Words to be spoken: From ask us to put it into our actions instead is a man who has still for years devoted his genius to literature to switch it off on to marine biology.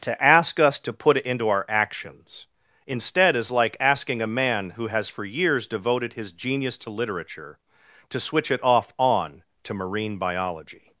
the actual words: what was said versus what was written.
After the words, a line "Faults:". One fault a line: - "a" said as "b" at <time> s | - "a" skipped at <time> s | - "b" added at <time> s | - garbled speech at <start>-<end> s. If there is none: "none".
To ask us to put it into our actions instead is like asking a man who has for years devoted his genius to literature to switch it off on to marine biology.
Faults:
- "From" said as "To" at 0.0 s
- "like asking" added at 3.5 s
- "still" skipped at 5.1 s